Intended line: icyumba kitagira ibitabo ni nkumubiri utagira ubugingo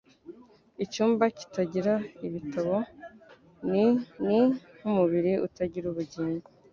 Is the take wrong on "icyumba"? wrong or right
right